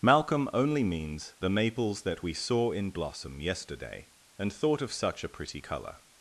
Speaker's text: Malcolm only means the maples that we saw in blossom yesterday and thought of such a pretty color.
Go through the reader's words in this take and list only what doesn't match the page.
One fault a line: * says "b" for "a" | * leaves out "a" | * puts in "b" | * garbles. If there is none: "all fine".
all fine